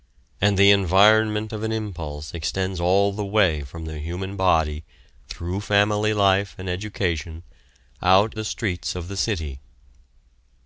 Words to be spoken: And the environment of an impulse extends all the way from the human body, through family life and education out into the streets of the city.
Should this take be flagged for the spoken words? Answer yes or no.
yes